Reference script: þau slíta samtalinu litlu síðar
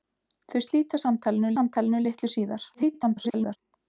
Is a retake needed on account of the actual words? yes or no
yes